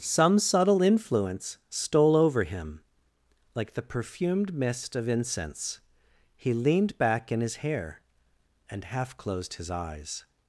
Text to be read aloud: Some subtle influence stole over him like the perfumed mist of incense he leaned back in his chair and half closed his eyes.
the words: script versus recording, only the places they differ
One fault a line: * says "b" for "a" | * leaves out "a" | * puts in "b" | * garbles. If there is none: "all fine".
* says "hair" for "chair"